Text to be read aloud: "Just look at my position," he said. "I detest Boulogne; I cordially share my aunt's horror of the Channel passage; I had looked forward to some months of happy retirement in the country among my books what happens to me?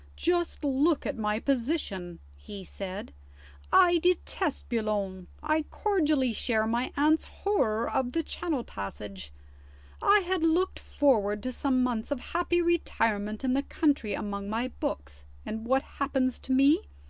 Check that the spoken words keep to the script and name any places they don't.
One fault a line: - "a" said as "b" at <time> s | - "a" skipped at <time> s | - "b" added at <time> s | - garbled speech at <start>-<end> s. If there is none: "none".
- "and" added at 15.4 s